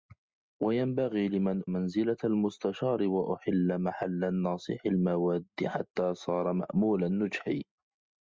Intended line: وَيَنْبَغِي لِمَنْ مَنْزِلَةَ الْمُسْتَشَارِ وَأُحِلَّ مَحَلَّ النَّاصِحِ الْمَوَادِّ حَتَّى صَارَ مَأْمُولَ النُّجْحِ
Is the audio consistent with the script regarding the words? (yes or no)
yes